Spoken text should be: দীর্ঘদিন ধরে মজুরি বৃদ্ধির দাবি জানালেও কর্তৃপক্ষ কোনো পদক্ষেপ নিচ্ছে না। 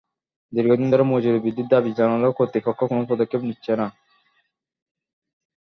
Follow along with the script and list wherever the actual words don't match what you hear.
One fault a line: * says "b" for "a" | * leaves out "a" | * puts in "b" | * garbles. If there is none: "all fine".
all fine